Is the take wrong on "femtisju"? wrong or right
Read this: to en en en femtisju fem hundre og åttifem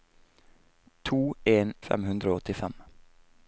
wrong